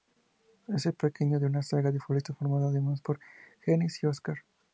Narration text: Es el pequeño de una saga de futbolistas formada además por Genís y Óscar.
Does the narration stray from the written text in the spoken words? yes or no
no